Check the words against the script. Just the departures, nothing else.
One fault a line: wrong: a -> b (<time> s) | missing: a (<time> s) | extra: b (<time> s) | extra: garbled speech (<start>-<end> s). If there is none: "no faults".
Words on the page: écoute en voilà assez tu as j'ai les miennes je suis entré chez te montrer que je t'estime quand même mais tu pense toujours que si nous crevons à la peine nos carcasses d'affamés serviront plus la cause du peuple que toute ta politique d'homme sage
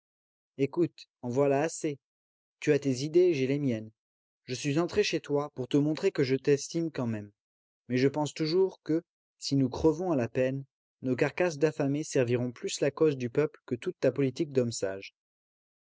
extra: tes idées (2.8 s)
extra: toi pour (5.2 s)
wrong: tu -> je (8.0 s)